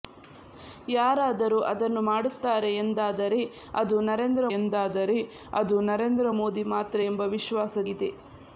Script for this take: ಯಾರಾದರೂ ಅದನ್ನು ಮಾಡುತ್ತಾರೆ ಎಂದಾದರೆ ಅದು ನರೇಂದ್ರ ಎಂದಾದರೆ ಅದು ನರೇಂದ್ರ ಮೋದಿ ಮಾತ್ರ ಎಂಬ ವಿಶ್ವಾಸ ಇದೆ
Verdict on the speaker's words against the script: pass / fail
pass